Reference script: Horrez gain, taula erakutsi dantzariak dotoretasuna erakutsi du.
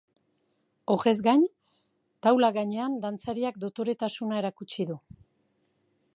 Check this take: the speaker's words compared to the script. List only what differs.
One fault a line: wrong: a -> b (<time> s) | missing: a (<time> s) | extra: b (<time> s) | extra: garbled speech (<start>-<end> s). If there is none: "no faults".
wrong: erakutsi -> gainean (2.6 s)